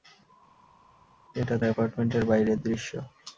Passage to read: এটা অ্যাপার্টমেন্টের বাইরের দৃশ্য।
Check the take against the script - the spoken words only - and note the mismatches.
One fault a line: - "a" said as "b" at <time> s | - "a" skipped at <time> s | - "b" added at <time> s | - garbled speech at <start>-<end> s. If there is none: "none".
none